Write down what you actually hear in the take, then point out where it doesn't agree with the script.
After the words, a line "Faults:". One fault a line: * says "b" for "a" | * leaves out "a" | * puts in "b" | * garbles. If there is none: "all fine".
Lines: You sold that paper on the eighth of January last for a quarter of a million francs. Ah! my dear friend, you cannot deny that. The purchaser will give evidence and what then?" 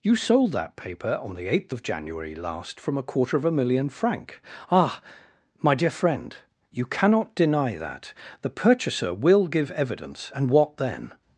You sold that paper on the eighth of January last from a quarter of a million franc. Ah! my dear friend, you cannot deny that. The purchaser will give evidence and what then?"
Faults:
* says "from" for "for"
* says "franc" for "francs"